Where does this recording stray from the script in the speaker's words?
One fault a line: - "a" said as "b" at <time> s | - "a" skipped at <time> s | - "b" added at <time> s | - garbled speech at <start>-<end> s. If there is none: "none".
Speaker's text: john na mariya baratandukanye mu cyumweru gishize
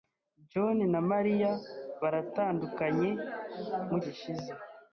- "cyumweru" skipped at 4.0 s